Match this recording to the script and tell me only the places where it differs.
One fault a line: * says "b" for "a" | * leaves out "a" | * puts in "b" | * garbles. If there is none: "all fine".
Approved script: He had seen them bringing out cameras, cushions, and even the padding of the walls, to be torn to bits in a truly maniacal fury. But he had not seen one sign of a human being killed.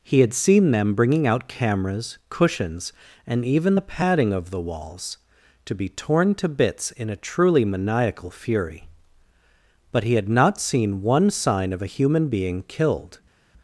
all fine